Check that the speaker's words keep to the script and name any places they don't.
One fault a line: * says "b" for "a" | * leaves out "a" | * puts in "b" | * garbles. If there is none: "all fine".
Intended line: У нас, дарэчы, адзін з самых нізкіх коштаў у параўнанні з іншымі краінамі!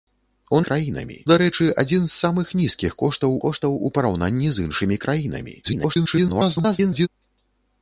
* says "краінамі" for "нас"
* puts in "коштаў"
* garbles